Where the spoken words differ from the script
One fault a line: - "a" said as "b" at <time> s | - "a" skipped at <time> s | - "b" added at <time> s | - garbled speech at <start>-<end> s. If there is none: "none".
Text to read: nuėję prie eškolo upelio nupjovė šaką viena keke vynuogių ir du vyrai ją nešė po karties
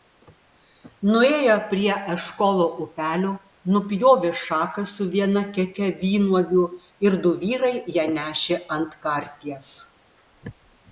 - "su" added at 4.9 s
- "po" said as "ant" at 8.8 s